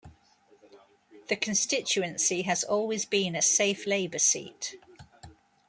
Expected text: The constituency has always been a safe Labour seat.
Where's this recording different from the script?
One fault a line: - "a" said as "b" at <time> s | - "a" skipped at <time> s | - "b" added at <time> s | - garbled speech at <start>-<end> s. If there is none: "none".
none